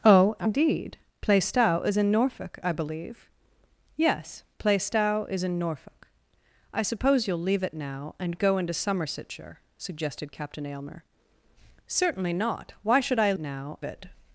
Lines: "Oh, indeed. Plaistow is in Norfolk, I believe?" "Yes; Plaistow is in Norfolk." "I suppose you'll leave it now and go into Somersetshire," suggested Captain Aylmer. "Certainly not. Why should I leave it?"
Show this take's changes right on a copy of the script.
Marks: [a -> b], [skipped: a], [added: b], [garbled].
"Oh, indeed. Plaistow is in Norfolk, I believe?" "Yes; Plaistow is in Norfolk." "I suppose you'll leave it now and go into Somersetshire," suggested Captain Aylmer. "Certainly not. Why should I [leave -> now] it?"